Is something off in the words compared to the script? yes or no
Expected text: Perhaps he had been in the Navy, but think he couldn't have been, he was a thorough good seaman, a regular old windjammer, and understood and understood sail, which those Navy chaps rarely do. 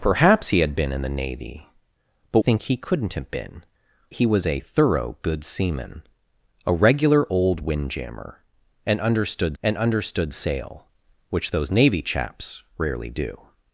no